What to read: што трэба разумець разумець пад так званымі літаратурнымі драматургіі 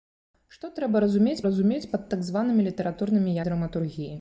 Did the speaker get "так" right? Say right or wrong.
right